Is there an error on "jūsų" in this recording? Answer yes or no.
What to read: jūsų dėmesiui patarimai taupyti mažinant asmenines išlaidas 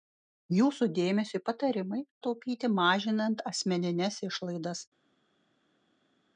no